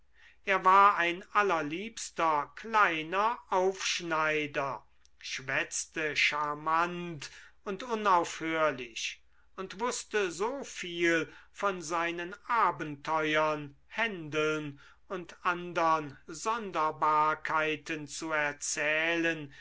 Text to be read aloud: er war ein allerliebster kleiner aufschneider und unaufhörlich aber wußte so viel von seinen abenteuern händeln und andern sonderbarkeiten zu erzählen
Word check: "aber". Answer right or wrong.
wrong